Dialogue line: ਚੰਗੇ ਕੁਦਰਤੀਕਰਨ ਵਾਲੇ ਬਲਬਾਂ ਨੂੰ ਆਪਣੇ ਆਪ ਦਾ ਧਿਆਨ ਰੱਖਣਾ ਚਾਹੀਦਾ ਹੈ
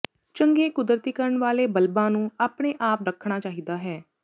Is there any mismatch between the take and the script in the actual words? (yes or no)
yes